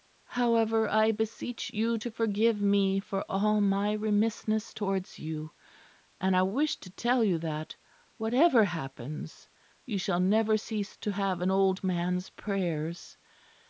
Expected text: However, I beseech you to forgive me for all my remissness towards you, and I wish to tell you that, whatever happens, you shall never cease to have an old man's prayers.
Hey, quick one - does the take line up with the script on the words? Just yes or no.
yes